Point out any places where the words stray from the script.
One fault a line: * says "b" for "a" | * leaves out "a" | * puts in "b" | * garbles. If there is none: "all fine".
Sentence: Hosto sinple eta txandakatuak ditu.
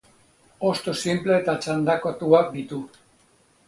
all fine